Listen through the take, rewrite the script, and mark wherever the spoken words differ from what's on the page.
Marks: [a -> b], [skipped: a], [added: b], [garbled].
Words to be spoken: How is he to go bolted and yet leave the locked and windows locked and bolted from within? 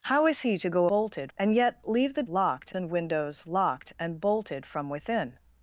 How is he to go bolted and yet leave the locked and windows locked and bolted from within?